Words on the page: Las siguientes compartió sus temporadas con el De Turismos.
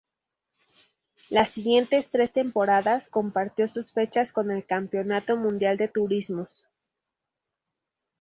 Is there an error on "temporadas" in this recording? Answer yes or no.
yes